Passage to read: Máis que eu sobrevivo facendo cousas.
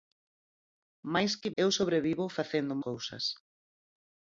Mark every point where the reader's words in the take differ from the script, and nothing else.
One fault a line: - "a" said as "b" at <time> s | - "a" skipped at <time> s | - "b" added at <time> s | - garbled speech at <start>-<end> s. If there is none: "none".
none